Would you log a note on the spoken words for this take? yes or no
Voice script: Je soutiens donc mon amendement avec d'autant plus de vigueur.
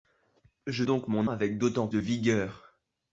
yes